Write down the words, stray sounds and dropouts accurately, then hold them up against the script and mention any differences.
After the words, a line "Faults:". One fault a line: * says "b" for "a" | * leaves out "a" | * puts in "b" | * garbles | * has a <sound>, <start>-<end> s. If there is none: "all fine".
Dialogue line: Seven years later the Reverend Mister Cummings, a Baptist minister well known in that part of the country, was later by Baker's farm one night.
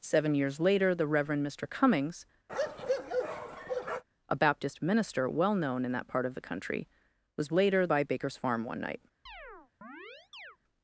Seven years later the Reverend Mister Cummings, a Baptist minister well known in that part of the country, was later by Baker's farm one night.
Faults:
* has a bark, 2.5-4.0 s
* has a chirp, 9.3-10.6 s